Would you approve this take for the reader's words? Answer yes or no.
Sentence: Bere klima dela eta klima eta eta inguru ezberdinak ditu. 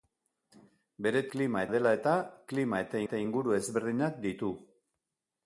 yes